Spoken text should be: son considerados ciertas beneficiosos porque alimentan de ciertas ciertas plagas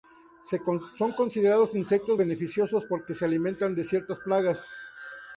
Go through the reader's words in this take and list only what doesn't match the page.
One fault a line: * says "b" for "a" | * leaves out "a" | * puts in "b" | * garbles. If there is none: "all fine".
* says "insectos" for "ciertas"
* puts in "se"
* leaves out "ciertas"